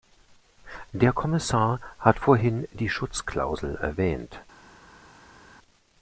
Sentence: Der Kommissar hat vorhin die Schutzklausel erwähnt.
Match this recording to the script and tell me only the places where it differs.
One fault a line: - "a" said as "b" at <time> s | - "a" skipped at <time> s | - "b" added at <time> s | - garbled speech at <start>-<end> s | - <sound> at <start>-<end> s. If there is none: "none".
none